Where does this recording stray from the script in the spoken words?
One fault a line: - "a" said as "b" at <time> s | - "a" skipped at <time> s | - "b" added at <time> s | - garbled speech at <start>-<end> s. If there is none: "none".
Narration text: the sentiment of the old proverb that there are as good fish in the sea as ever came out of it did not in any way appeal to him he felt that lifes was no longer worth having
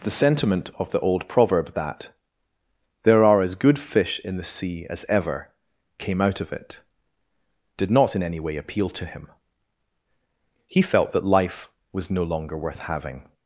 - "lifes" said as "life" at 11.2 s